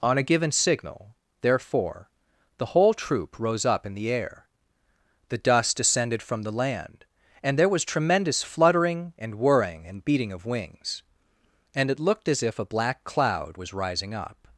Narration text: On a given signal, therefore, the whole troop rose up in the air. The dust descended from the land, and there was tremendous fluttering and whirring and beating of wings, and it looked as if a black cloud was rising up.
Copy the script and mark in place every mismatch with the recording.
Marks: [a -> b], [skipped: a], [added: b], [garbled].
On a given signal, therefore, the whole troop rose up in the air. The dust descended from the land, and there was tremendous fluttering and whirring and beating of wings, and it looked as if a black cloud was rising up.